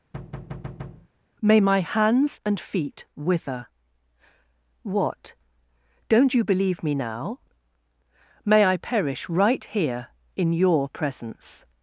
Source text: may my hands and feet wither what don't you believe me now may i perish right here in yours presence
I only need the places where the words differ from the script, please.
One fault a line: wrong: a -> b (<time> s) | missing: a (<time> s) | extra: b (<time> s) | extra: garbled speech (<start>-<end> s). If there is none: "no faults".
wrong: yours -> your (10.5 s)